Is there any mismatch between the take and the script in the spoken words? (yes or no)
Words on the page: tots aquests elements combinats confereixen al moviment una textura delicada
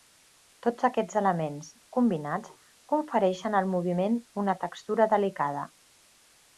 no